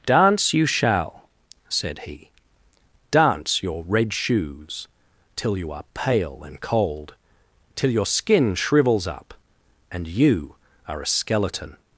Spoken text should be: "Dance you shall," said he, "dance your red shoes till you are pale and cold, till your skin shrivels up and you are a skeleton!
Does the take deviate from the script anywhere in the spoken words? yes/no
no